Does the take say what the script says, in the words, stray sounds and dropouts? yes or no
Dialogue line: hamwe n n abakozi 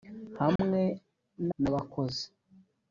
no